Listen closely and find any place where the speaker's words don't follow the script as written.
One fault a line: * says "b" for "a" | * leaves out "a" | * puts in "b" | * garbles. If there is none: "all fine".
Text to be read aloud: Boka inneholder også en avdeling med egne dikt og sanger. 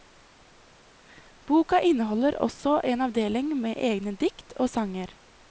all fine